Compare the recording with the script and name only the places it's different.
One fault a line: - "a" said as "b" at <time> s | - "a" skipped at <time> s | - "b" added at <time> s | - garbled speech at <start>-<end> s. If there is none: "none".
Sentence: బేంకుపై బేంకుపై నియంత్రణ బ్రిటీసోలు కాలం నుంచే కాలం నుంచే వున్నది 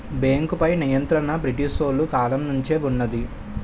- "బేంకుపై" skipped at 0.7 s
- "కాలం నుంచే" skipped at 2.8 s